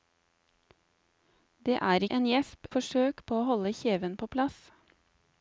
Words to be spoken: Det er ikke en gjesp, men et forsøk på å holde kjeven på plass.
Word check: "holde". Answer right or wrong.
right